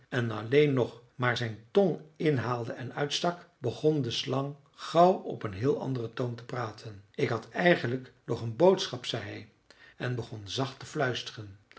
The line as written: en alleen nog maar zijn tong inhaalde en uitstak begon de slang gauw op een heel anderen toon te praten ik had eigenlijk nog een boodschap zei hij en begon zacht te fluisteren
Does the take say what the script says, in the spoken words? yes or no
yes